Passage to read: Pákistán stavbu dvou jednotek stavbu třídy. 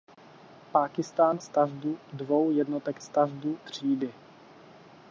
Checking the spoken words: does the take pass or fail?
pass